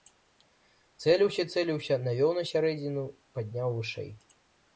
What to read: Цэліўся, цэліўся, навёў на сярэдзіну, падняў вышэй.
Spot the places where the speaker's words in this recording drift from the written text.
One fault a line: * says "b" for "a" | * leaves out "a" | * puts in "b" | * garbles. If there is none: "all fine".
all fine